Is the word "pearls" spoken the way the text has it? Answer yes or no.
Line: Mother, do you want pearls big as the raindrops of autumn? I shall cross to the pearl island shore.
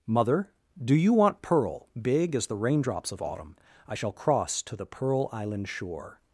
no